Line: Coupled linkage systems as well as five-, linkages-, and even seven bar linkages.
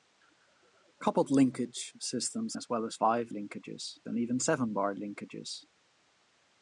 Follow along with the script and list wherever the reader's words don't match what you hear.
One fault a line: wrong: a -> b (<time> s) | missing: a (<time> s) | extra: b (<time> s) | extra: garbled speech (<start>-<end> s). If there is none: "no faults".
no faults